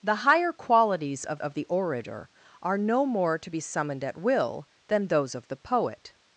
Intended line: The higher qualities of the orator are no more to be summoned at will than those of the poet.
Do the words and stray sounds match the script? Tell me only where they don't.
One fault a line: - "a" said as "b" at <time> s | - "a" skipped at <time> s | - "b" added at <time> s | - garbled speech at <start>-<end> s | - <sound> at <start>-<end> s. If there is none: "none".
- "of" added at 1.4 s